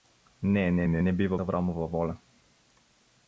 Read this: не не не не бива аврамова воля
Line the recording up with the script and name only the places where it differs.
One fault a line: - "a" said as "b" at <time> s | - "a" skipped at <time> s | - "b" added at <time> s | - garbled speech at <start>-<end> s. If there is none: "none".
none